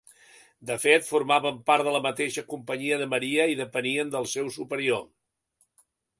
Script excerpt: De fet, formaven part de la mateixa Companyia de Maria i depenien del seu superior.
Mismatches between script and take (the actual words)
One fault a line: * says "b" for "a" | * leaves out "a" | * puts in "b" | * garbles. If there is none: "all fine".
all fine